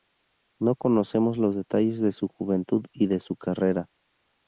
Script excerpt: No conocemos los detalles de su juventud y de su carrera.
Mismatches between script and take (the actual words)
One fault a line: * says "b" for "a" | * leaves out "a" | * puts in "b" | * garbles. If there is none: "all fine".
all fine